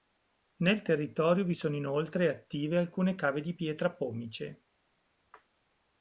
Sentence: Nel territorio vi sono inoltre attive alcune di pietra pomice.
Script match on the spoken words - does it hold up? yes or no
no